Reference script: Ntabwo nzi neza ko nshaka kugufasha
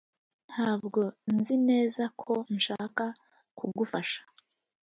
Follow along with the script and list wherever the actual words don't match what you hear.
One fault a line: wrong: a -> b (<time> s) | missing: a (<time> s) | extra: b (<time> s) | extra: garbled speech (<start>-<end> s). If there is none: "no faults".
no faults